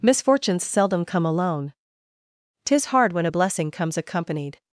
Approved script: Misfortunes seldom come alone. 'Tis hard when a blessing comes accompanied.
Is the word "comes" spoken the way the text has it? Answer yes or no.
yes